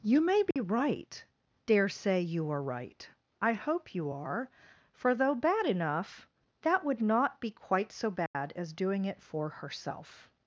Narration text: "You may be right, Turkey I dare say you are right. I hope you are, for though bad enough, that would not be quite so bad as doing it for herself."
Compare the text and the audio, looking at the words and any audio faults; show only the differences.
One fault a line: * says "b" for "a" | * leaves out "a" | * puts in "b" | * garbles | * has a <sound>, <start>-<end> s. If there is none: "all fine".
* has a dropout, 0.5-0.6 s
* leaves out "Turkey I"
* has a dropout, 8.3-8.3 s